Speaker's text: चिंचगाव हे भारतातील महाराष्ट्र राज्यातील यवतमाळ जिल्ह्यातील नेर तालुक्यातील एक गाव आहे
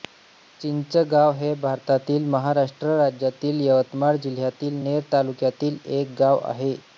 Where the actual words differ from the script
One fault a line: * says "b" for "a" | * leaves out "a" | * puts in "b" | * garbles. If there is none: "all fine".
all fine